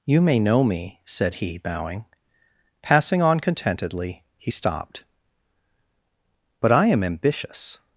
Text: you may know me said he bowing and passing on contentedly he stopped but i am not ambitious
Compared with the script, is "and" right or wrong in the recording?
wrong